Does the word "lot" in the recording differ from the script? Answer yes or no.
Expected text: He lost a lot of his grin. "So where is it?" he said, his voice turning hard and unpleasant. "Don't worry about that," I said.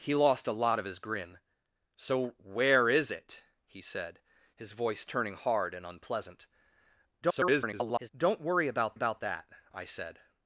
no